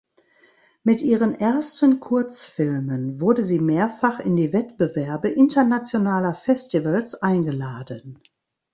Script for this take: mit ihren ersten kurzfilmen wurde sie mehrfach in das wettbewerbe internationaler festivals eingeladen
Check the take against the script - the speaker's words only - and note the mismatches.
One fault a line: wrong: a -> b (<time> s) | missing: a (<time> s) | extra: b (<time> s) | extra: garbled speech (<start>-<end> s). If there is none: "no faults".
wrong: das -> die (4.3 s)